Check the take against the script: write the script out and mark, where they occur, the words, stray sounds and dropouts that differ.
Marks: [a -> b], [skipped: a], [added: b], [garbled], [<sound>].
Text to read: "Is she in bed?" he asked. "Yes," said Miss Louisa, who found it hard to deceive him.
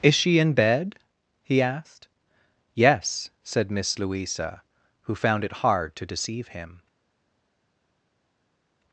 "Is she in bed?" he asked. "Yes," said Miss Louisa, who found it hard to deceive him.